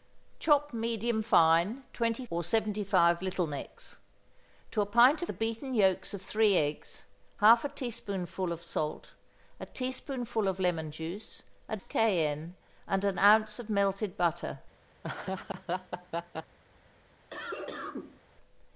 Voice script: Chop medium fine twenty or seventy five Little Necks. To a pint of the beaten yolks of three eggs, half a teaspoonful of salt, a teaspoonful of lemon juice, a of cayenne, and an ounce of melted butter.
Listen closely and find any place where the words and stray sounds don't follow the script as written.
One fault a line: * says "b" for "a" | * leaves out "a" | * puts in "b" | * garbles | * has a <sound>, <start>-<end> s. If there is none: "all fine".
* has a laugh, 15.0-16.6 s
* has a cough, 17.3-18.2 s